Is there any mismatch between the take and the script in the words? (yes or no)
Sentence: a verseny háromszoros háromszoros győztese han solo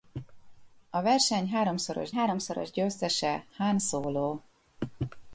no